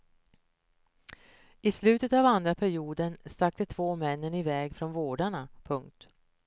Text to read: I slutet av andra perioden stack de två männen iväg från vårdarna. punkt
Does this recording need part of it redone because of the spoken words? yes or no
no